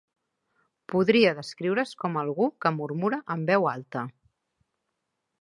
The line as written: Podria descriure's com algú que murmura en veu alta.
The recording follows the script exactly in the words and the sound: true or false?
true